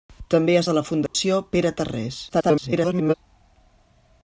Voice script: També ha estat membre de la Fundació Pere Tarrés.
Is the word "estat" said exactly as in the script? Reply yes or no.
no